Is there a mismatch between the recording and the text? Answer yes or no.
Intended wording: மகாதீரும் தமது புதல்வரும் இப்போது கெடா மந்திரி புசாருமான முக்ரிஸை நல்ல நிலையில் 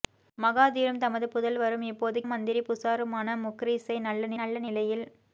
yes